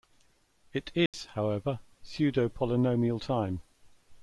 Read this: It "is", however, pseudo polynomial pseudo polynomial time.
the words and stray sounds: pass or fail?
fail